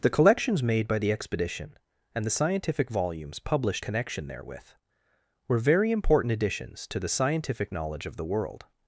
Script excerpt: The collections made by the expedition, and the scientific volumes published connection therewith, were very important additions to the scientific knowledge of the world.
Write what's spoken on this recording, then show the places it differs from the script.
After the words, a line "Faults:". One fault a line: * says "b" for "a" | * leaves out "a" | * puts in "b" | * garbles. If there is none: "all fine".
The collections made by the expedition, and the scientific volumes published connection therewith, were very important additions to the scientific knowledge of the world.
Faults:
all fine